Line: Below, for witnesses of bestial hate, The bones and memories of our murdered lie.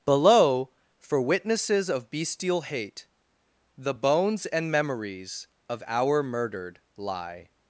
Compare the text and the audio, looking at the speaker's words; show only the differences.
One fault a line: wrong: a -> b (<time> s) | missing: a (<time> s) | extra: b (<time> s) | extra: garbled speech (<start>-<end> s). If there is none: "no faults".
no faults